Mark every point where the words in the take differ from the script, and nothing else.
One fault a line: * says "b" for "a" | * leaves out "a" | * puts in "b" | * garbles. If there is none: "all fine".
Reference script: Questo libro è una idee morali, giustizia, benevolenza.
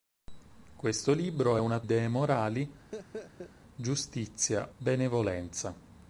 all fine